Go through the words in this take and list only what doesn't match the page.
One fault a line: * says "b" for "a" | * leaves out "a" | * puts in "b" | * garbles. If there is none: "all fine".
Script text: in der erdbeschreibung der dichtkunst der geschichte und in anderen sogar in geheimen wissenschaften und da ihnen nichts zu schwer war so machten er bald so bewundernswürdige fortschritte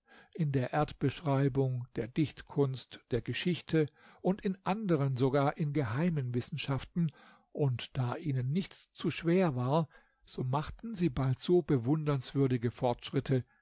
* says "sie" for "er"